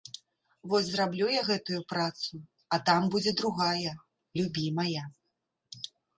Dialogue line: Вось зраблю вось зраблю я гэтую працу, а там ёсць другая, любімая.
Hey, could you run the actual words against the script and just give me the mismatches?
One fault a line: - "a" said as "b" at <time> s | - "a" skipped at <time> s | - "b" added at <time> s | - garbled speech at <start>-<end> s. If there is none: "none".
- "вось зраблю" skipped at 1.3 s
- "ёсць" said as "будзе" at 3.2 s